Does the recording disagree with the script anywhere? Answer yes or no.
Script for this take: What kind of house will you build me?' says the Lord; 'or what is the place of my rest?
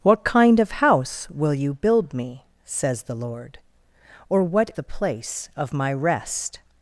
yes